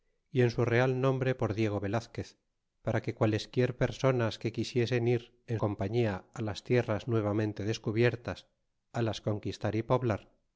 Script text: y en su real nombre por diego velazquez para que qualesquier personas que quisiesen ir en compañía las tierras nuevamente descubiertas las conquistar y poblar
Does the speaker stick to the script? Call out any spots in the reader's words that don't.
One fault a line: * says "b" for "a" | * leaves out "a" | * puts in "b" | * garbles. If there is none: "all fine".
all fine